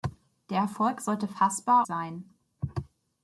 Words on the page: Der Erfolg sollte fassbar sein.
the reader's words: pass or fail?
pass